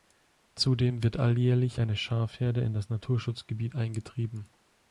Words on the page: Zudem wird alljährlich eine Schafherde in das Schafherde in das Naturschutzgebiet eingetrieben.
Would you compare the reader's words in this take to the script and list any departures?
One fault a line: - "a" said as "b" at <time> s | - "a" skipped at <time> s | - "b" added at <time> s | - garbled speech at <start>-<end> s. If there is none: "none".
- "Schafherde in das" skipped at 2.9 s